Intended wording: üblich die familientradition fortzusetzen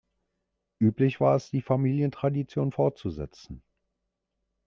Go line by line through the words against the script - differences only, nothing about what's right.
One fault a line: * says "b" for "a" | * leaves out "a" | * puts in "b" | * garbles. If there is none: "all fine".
* puts in "war es"